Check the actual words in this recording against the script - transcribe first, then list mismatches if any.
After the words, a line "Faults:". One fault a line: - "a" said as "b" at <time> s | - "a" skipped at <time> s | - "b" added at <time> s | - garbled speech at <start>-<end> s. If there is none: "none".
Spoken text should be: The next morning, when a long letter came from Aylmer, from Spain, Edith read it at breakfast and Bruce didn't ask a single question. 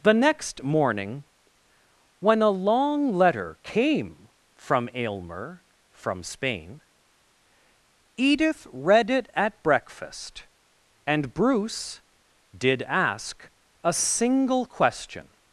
The next morning, when a long letter came from Aylmer, from Spain, Edith read it at breakfast and Bruce did ask a single question.
Faults:
- "didn't" said as "did" at 12.6 s